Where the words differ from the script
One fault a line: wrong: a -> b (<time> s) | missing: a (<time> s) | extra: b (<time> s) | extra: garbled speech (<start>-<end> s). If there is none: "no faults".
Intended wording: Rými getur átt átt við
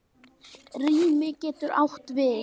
missing: átt (2.1 s)